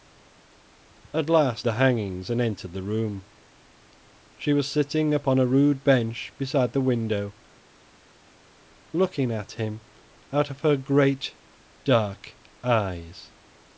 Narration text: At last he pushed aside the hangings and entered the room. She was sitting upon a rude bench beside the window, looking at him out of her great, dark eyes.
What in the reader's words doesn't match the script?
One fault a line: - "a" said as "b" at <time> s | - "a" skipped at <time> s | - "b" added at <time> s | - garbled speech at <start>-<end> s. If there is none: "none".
- "he pushed aside" skipped at 1.7 s